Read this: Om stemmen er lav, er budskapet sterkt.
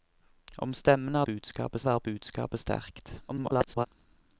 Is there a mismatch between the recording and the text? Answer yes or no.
yes